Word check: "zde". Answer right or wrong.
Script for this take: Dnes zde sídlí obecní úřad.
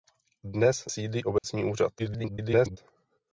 wrong